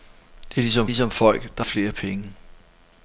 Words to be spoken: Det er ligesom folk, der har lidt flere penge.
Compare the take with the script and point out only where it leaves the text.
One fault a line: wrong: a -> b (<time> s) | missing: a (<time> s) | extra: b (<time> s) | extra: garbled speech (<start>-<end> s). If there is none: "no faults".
extra: ligesom (0.8 s)
missing: har lidt (1.6 s)